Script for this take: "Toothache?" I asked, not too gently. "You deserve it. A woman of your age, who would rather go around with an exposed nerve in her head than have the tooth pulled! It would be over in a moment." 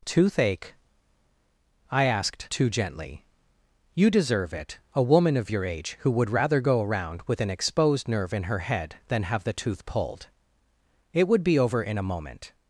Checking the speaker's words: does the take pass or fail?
fail